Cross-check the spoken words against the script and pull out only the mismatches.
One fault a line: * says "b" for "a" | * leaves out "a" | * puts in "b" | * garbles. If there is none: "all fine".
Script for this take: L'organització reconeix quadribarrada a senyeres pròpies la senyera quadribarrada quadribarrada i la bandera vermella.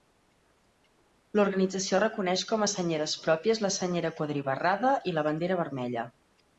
* says "com" for "quadribarrada"
* leaves out "quadribarrada"